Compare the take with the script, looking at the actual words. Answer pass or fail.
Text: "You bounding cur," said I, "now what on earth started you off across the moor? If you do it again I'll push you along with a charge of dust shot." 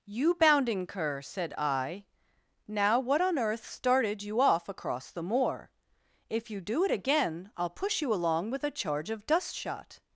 pass